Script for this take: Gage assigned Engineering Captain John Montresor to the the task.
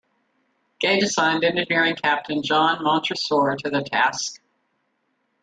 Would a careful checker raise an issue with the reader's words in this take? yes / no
yes